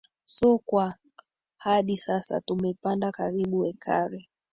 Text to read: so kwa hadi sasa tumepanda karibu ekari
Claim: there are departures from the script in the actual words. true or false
false